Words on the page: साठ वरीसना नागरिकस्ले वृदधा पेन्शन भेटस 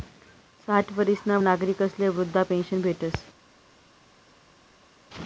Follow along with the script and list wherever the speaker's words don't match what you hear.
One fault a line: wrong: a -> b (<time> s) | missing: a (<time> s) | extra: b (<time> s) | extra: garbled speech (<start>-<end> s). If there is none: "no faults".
no faults